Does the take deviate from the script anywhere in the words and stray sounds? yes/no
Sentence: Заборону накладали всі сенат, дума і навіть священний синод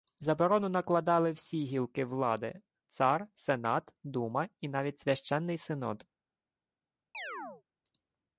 yes